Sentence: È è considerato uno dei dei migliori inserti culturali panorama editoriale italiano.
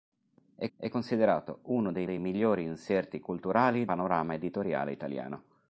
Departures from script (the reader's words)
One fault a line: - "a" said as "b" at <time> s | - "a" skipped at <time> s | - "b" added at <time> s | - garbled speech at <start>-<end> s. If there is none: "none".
none